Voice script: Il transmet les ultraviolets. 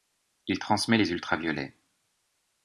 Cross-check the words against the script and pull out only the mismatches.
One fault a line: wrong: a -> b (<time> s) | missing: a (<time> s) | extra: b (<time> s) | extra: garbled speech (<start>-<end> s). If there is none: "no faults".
no faults